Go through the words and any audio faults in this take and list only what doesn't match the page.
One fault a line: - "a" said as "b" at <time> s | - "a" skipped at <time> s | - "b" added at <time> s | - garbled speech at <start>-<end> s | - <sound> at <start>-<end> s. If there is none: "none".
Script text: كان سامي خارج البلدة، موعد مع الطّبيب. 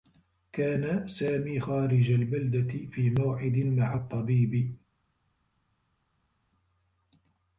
- "في" added at 2.9 s